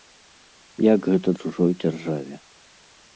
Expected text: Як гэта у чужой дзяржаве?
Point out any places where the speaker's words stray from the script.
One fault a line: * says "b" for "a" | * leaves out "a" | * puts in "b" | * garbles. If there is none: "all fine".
all fine